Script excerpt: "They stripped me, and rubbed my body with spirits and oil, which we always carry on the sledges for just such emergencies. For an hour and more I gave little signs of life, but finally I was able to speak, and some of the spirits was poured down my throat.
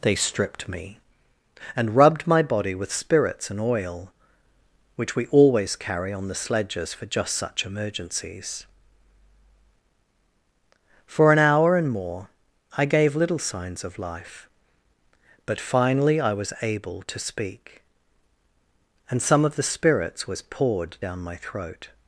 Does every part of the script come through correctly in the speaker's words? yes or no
yes